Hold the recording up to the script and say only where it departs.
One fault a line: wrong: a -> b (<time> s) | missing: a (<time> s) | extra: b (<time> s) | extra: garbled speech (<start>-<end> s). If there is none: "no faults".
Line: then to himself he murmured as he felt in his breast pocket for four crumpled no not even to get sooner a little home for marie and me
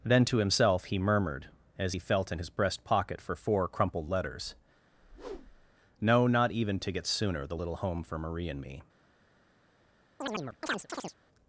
extra: letters (4.1 s)
wrong: a -> the (7.5 s)